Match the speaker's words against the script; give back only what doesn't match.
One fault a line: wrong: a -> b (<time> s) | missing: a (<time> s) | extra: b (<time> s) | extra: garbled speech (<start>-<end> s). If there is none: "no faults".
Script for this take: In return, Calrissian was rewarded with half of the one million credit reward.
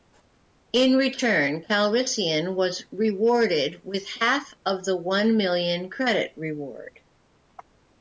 no faults